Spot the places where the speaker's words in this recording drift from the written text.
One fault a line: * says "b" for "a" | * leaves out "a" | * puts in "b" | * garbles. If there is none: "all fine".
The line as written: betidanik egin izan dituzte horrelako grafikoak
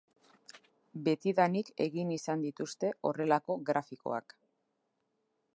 all fine